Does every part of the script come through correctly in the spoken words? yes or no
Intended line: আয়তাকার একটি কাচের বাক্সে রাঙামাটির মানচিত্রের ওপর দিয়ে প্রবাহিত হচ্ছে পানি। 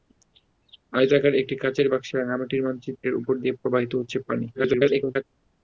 no